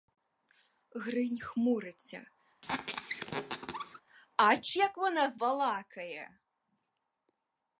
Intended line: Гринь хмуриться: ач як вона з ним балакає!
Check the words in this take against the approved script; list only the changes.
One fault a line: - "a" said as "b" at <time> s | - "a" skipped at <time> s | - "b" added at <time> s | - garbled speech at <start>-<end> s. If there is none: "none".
- "ним" skipped at 5.4 s